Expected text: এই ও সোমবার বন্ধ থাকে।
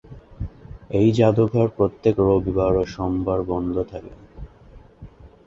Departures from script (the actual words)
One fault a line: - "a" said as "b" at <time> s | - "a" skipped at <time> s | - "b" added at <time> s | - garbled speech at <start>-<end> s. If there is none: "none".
- "জাদুঘর প্রত্যেক রবিবার" added at 1.1 s